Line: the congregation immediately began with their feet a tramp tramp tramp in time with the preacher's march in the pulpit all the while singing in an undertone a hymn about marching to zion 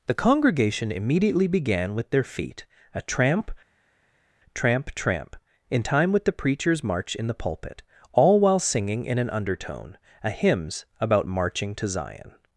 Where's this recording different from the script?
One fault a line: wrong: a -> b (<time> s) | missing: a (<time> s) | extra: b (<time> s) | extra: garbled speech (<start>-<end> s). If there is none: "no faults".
missing: the (8.4 s)
wrong: hymn -> hymns (10.3 s)